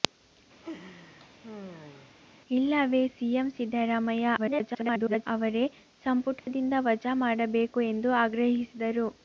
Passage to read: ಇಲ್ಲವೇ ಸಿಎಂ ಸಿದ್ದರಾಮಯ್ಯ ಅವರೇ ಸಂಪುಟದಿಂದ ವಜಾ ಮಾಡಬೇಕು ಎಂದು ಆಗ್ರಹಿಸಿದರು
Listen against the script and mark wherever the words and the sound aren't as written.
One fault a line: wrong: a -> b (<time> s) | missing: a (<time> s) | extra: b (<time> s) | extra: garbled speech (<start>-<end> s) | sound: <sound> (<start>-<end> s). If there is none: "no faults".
sound: laugh (0.6-2.1 s)
extra: garbled speech (4.4-5.3 s)
sound: dropout (6.4-6.5 s)